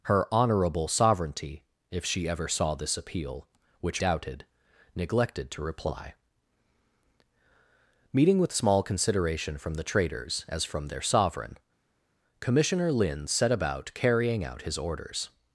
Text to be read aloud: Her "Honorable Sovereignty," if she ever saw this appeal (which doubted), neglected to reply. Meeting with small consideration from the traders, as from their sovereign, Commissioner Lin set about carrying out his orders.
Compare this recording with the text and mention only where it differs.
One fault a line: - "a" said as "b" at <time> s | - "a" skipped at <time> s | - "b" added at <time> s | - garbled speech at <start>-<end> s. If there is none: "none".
none